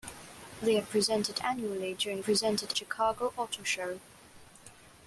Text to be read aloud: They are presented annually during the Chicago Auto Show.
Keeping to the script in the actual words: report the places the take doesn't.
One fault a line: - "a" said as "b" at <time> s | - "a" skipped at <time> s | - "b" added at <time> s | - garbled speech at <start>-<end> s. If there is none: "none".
- "the" said as "presented" at 2.2 s